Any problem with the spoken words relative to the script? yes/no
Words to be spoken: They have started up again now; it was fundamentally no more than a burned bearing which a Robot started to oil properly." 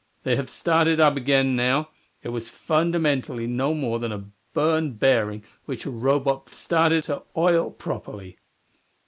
no